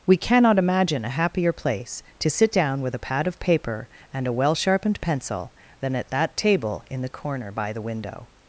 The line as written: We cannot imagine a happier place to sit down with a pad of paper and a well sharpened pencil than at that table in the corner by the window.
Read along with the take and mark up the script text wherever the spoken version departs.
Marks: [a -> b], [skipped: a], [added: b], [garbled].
We cannot imagine a happier place to sit down with a pad of paper and a well sharpened pencil than at that table in the corner by the window.